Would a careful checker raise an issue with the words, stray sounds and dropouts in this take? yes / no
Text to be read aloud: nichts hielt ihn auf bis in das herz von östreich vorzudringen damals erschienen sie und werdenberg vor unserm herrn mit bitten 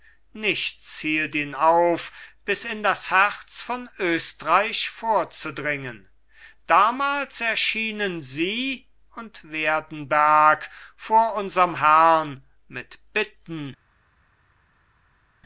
no